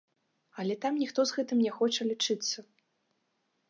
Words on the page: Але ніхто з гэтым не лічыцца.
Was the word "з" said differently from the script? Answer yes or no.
no